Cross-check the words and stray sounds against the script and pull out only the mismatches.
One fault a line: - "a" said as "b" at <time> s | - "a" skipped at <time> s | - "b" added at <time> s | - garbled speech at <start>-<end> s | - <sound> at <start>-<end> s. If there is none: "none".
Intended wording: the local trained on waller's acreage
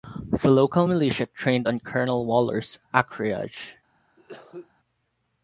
- "militia" added at 0.8 s
- "colonel" added at 1.8 s
- cough at 4.2-4.7 s